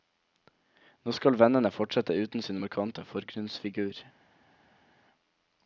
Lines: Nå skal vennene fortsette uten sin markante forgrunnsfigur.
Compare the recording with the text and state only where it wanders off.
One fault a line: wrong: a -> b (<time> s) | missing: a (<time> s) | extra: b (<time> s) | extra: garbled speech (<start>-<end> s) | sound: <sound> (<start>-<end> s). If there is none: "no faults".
no faults